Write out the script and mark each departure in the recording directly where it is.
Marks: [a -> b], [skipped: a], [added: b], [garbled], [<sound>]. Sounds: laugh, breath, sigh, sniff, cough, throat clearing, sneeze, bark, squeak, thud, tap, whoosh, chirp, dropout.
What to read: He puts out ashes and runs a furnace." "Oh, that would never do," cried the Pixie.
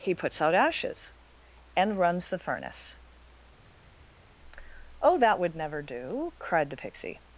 He puts out ashes and runs [a -> the] furnace." "Oh, that would never do," cried the Pixie.